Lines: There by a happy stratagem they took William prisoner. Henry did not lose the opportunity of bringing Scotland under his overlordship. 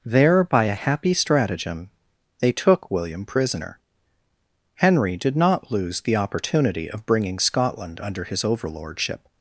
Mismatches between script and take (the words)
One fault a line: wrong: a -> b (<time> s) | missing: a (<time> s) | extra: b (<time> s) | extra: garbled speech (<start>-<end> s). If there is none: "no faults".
no faults